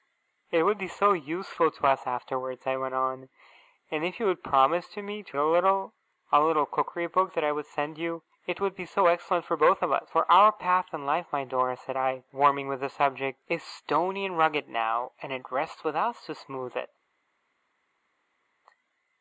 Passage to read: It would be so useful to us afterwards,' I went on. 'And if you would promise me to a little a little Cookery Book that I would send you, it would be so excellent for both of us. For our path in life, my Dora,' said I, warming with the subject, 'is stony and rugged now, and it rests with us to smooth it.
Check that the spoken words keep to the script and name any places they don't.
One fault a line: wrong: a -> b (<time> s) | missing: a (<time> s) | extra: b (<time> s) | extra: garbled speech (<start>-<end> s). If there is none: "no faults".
no faults